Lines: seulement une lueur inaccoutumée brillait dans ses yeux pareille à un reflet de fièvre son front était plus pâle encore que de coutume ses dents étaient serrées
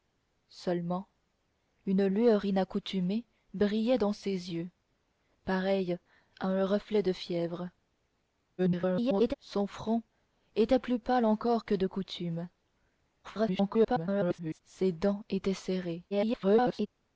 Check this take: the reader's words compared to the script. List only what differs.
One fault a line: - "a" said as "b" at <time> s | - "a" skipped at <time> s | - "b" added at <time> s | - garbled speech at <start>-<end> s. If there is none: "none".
- garbled speech at 8.6-9.3 s
- garbled speech at 13.2-14.6 s
- garbled speech at 16.1-16.9 s